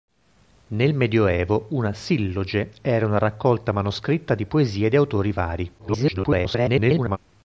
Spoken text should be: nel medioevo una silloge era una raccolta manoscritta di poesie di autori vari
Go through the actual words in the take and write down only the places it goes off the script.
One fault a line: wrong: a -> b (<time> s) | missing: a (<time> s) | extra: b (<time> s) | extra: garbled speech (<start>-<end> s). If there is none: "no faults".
extra: garbled speech (5.8-7.2 s)